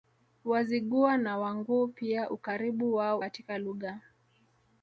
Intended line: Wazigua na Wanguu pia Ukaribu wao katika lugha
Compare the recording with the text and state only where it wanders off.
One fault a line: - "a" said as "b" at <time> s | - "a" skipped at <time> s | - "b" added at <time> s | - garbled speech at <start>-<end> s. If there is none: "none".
none